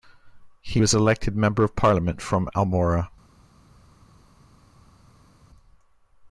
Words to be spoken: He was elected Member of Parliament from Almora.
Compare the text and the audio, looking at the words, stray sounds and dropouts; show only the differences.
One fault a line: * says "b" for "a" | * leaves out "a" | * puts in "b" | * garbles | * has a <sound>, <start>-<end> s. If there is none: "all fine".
all fine